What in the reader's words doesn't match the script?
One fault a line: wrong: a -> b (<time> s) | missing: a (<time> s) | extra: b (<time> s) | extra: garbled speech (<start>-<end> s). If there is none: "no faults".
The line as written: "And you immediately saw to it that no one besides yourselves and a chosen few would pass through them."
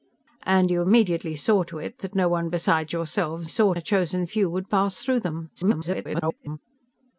wrong: and -> saw (3.5 s)
extra: garbled speech (5.6-6.6 s)